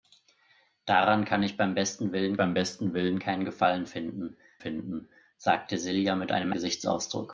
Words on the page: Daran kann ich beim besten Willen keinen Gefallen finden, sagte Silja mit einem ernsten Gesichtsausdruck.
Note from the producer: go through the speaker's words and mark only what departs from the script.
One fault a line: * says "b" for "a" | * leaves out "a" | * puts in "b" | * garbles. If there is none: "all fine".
* puts in "beim besten Willen"
* puts in "finden"
* leaves out "ernsten"